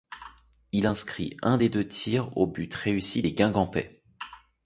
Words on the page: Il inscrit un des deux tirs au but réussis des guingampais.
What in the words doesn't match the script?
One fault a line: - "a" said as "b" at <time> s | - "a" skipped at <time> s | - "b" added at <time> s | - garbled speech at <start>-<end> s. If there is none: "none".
none